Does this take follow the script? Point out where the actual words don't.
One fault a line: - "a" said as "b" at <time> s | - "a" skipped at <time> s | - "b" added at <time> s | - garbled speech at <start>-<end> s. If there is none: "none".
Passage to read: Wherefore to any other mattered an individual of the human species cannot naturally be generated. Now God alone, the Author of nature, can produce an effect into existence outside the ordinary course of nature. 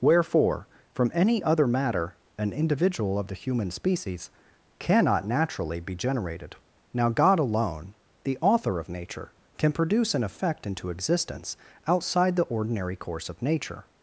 - "to" said as "from" at 0.9 s
- "mattered" said as "matter" at 1.7 s